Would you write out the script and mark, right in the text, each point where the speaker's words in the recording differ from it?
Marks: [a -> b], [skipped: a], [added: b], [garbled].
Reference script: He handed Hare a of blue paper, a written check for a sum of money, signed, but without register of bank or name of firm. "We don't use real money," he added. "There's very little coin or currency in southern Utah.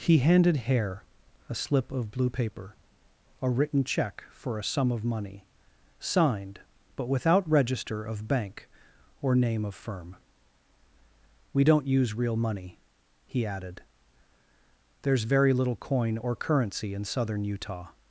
He handed Hare a [added: slip] of blue paper, a written check for a sum of money, signed, but without register of bank or name of firm. "We don't use real money," he added. "There's very little coin or currency in southern Utah.